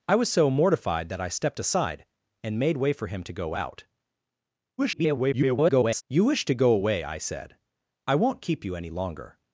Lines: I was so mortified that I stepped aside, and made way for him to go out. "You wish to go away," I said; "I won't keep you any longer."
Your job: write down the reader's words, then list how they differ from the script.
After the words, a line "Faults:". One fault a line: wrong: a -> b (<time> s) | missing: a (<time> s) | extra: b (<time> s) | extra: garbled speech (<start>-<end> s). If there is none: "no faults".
I was so mortified that I stepped aside, and made way for him to go out. [garbled] "You wish to go away," I said; "I won't keep you any longer."
Faults:
extra: garbled speech (4.8-6.0 s)